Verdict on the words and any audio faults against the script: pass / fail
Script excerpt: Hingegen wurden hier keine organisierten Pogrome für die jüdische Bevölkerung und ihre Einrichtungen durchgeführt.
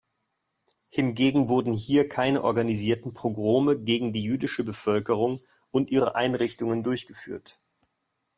fail